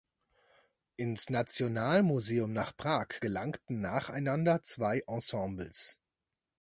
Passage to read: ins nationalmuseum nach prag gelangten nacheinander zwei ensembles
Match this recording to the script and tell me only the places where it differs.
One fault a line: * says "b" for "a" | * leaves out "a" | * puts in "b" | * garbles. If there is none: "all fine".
all fine